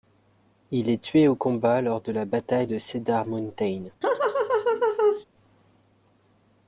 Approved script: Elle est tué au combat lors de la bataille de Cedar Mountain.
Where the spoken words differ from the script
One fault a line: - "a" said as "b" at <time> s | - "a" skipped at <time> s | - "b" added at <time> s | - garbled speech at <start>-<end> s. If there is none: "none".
- "Elle" said as "Il" at 0.7 s